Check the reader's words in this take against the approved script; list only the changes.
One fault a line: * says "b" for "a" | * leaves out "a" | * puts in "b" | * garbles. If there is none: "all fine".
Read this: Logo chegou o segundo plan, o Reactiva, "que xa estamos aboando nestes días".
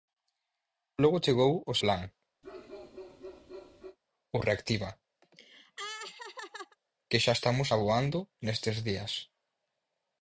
* leaves out "segundo"